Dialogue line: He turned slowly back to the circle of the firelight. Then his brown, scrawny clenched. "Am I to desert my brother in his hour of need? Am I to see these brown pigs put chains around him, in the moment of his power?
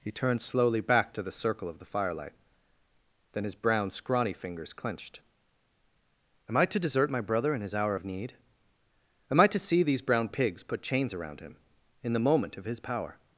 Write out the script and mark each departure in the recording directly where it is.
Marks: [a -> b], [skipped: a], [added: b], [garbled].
He turned slowly back to the circle of the firelight. Then his brown, scrawny [added: fingers] clenched. "Am I to desert my brother in his hour of need? Am I to see these brown pigs put chains around him, in the moment of his power?